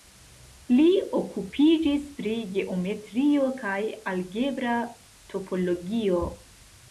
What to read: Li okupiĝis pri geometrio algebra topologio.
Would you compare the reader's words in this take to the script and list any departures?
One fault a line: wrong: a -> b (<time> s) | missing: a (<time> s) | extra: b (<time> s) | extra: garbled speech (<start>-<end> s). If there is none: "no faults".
extra: kaj (3.6 s)